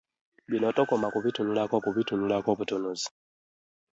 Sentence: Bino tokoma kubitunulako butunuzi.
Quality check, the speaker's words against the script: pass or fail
fail